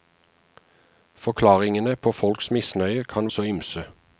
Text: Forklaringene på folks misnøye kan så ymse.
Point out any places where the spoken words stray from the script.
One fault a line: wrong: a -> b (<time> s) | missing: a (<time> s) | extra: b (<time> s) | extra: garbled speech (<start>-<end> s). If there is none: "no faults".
no faults